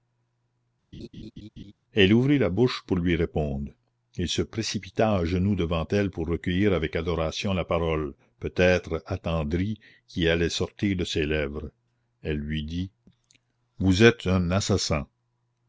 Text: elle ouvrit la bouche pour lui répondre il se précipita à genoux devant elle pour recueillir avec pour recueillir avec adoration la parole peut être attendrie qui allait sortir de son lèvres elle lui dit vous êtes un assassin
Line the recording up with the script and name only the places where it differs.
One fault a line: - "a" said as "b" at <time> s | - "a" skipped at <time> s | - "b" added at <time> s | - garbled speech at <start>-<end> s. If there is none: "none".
- "pour recueillir avec" skipped at 7.0 s
- "son" said as "ses" at 11.0 s